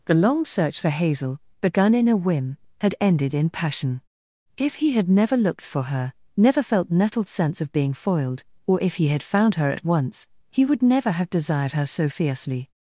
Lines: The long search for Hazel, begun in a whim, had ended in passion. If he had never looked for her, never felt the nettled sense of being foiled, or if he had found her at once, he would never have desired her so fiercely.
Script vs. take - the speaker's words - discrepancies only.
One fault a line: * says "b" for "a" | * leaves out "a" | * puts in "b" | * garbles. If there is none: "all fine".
* leaves out "the"